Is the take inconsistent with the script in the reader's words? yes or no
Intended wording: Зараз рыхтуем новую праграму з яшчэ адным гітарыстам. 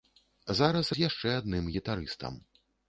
yes